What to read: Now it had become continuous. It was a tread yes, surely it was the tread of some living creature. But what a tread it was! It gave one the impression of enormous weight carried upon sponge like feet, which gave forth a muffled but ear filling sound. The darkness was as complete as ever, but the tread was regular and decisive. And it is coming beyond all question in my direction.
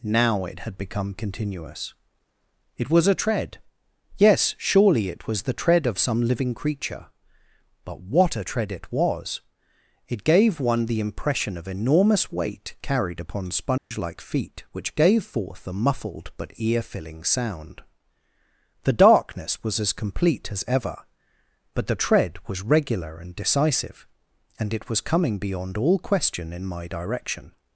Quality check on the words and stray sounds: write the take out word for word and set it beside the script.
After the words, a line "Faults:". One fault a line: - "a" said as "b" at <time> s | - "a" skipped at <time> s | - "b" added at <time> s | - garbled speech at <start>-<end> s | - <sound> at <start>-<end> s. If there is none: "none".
Now it had become continuous. It was a tread yes, surely it was the tread of some living creature. But what a tread it was! It gave one the impression of enormous weight carried upon sponge like feet, which gave forth a muffled but ear filling sound. The darkness was as complete as ever, but the tread was regular and decisive. And it was coming beyond all question in my direction.
Faults:
- dropout at 13.8-13.9 s
- "is" said as "was" at 24.9 s